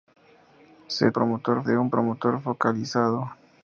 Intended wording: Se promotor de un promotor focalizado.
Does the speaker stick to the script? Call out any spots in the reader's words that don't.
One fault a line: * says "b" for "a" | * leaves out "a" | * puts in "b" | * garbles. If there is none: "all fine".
all fine